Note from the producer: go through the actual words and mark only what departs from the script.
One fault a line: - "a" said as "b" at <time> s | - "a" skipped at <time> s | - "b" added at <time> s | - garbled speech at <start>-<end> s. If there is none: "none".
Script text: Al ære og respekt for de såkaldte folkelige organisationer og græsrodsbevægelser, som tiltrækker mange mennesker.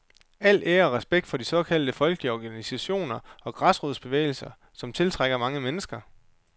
none